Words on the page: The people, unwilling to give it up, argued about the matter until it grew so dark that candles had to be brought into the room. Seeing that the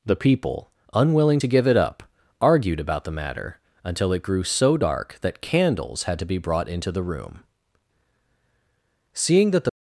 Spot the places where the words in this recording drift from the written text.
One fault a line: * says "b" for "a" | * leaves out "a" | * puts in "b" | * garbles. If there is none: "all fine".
all fine